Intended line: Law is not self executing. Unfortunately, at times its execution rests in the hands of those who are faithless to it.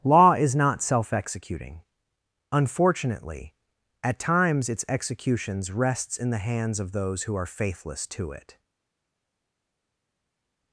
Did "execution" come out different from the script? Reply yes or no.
yes